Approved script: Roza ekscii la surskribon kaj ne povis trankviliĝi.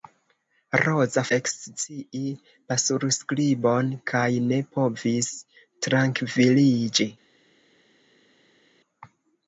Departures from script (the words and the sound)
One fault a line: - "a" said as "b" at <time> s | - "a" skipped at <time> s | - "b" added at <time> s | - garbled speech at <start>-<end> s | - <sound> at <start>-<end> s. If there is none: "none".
none